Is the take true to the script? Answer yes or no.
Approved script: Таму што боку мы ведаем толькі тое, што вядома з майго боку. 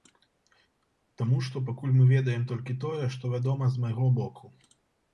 no